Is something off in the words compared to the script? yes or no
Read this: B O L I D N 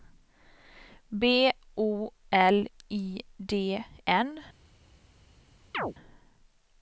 no